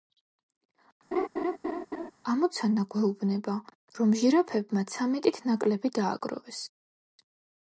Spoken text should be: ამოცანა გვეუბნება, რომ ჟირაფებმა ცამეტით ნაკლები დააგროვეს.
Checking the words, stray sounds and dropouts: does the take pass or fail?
fail